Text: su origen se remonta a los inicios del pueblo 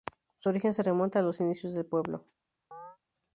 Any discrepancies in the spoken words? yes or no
no